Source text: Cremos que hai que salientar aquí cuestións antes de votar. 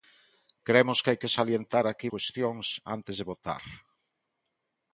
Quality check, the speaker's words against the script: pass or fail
pass